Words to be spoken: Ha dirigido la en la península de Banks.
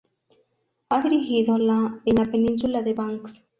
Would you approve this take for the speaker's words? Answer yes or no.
yes